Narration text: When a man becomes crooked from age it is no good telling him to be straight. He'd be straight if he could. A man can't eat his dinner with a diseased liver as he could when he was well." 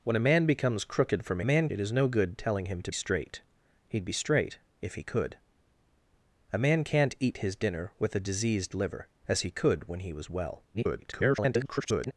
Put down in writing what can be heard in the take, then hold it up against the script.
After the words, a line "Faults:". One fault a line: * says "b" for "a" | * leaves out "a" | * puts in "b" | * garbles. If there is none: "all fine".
When a man becomes crooked from man it is no good telling him to straight. He'd be straight if he could. A man can't eat his dinner with a diseased liver as he could when he was well." [garbled]
Faults:
* says "man" for "age"
* leaves out "be"
* garbles